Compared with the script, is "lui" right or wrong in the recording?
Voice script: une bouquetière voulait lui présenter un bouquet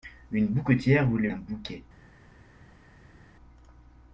wrong